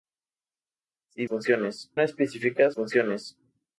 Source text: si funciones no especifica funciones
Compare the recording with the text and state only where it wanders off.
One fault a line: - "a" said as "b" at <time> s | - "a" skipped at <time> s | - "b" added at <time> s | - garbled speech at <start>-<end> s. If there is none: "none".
none